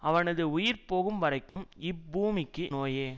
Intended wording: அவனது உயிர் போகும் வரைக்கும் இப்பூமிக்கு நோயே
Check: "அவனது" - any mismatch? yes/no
no